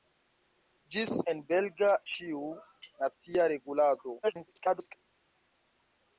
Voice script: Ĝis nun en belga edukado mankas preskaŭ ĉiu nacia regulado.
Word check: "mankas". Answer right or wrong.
wrong